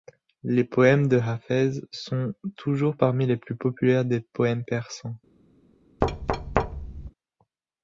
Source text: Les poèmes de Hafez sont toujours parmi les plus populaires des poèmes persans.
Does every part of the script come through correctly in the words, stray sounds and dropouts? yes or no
no